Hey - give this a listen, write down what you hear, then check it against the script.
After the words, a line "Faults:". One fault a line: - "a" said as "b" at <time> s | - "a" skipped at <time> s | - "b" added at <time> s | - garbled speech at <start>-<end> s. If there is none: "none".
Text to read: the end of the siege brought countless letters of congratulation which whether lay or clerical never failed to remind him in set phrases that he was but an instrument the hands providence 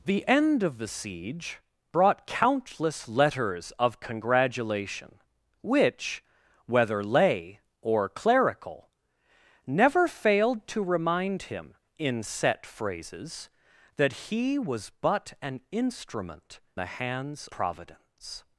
the end of the siege brought countless letters of congratulation which whether lay or clerical never failed to remind him in set phrases that he was but an instrument the hands providence
Faults:
none